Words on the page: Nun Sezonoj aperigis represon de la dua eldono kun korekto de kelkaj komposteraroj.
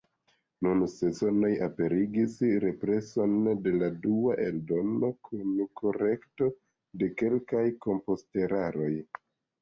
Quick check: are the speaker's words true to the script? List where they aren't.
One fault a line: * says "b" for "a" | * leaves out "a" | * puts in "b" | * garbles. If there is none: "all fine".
all fine